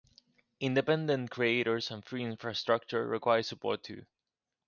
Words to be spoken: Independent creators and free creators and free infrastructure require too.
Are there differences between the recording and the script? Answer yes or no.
yes